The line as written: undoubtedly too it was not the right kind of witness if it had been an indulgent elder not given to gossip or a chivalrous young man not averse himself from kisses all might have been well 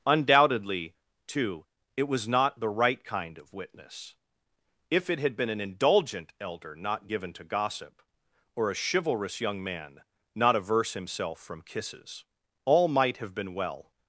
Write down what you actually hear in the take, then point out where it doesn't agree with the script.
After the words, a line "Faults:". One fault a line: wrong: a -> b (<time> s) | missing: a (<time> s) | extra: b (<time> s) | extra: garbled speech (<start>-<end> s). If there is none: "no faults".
undoubtedly too it was not the right kind of witness if it had been an indulgent elder not given to gossip or a chivalrous young man not averse himself from kisses all might have been well
Faults:
no faults